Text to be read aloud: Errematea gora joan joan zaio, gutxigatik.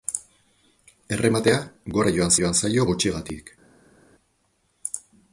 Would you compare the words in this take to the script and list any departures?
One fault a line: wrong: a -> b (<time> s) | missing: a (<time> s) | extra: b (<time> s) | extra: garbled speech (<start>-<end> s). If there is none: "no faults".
no faults